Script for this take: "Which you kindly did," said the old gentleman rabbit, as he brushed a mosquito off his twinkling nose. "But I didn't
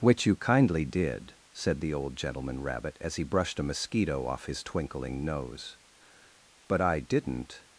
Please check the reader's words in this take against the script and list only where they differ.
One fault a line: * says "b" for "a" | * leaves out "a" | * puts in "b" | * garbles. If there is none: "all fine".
all fine